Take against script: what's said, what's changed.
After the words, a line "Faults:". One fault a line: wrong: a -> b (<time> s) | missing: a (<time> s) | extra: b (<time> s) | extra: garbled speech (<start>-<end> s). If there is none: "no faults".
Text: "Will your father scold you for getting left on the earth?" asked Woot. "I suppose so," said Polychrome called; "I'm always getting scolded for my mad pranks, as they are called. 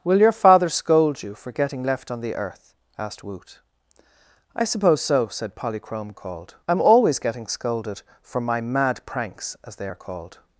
"Will your father scold you for getting left on the earth?" asked Woot. "I suppose so," said Polychrome called; "I'm always getting scolded for my mad pranks, as they are called.
Faults:
no faults